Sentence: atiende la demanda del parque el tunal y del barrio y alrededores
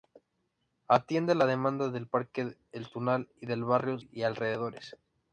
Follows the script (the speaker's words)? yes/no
yes